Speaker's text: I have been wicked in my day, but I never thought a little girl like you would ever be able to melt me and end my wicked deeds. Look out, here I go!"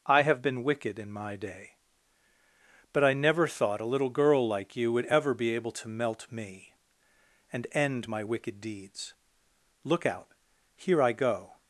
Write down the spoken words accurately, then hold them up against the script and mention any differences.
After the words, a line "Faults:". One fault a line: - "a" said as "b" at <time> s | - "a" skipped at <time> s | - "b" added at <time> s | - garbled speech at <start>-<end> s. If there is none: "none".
I have been wicked in my day, but I never thought a little girl like you would ever be able to melt me and end my wicked deeds. Look out, here I go!"
Faults:
none